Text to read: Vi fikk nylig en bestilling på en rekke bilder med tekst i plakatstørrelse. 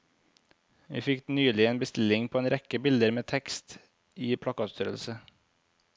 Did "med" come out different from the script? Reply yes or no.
no